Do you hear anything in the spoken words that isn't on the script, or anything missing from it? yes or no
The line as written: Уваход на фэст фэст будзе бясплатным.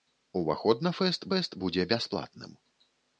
no